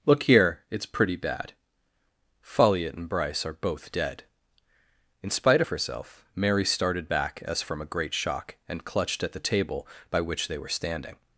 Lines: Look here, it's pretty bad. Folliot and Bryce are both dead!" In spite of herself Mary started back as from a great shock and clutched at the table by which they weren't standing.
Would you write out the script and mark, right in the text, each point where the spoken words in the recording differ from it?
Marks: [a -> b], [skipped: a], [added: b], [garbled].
Look here, it's pretty bad. Folliot and Bryce are both dead!" In spite of herself Mary started back as from a great shock and clutched at the table by which they [weren't -> were] standing.